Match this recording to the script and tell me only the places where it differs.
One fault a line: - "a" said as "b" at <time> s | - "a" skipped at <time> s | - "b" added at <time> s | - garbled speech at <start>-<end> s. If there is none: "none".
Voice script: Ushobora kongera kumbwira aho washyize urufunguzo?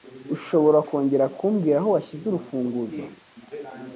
none